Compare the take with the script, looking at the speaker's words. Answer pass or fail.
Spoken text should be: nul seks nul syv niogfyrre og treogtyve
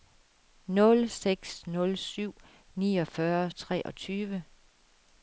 pass